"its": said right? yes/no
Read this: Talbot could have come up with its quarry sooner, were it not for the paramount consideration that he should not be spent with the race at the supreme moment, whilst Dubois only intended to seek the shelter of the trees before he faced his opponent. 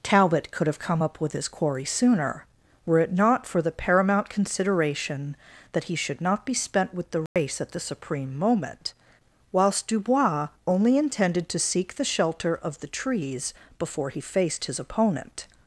no